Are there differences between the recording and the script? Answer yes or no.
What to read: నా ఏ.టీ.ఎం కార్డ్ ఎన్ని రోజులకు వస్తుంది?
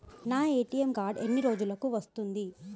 no